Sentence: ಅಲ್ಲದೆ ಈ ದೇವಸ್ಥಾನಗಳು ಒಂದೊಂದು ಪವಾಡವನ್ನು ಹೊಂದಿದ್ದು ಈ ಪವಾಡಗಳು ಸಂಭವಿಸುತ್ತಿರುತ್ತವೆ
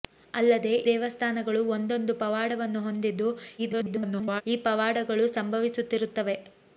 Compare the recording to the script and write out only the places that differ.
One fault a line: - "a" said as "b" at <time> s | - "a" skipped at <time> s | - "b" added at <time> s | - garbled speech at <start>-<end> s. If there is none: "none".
- "ಈ" skipped at 0.7 s
- garbled speech at 3.6-4.4 s